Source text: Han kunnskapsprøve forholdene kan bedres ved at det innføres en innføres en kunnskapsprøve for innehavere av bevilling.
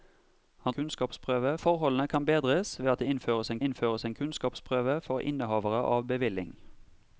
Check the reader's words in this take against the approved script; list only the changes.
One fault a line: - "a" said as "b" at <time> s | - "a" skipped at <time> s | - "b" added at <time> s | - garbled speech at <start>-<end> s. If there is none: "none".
none